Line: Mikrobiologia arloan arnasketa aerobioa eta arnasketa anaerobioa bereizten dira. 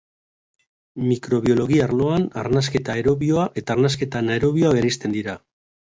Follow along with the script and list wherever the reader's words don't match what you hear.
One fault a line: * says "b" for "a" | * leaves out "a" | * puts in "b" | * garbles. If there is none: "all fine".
all fine